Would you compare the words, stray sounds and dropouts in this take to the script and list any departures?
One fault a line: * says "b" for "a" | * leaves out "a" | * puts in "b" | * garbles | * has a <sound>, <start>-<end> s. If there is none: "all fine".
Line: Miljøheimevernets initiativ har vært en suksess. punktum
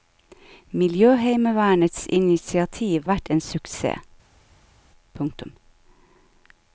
* leaves out "har"